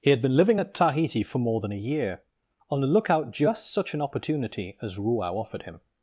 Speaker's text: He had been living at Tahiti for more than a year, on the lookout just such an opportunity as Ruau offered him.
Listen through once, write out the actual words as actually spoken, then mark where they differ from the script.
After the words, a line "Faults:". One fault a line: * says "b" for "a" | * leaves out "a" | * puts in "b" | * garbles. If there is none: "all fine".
He had been living at Tahiti for more than a year, on the lookout just such an opportunity as Ruau offered him.
Faults:
all fine